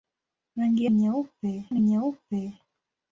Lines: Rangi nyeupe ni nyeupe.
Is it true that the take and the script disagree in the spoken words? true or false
false